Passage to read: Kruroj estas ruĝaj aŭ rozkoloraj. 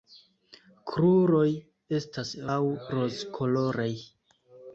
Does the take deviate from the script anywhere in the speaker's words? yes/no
yes